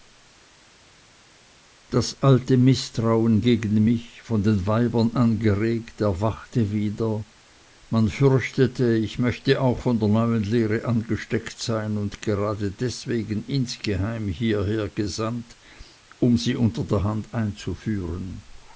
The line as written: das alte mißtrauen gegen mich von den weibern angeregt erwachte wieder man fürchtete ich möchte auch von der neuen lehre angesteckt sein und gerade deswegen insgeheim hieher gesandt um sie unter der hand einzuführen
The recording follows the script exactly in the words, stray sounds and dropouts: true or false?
true